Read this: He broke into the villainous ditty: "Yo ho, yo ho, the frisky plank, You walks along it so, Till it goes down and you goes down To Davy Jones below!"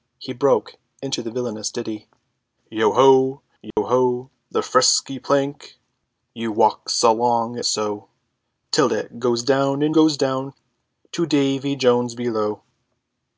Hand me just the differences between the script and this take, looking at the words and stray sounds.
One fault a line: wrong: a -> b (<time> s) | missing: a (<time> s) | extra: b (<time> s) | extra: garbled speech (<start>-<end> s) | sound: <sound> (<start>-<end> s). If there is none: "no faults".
sound: dropout (3.7-3.8 s)
missing: it (7.6 s)
missing: you (10.0 s)